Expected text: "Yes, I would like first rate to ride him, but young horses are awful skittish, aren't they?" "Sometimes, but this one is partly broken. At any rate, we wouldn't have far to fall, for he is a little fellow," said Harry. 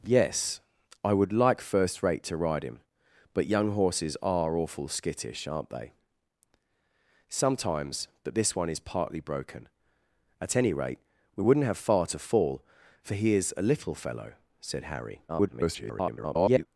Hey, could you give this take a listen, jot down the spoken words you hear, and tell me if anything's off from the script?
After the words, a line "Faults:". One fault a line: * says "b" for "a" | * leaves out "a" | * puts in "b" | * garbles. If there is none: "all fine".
"Yes, I would like first rate to ride him, but young horses are awful skittish, aren't they?" "Sometimes, but this one is partly broken. At any rate, we wouldn't have far to fall, for he is a little fellow," said Harry. [garbled]
Faults:
* garbles